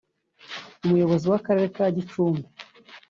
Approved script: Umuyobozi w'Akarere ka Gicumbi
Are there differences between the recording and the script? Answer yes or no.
no